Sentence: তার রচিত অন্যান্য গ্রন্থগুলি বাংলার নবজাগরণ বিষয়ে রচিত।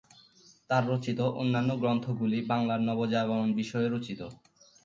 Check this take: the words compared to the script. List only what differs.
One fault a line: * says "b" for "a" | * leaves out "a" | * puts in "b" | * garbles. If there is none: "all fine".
all fine